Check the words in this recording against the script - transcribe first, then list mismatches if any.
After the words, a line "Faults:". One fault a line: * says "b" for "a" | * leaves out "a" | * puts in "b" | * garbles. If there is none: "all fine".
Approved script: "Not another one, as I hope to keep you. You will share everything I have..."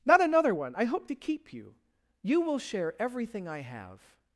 "Not another one, I hope to keep you. You will share everything I have..."
Faults:
* leaves out "as"